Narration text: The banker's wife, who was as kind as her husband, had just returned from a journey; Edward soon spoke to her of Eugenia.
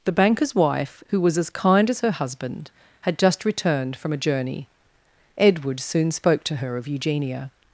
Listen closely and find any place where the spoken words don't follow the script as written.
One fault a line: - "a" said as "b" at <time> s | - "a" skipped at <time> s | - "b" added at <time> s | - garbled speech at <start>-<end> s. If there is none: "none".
none